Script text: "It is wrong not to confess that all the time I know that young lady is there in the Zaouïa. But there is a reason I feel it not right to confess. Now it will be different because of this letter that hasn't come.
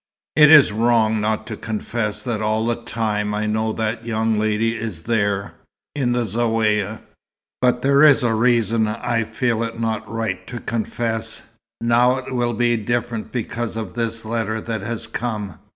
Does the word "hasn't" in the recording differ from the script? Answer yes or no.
yes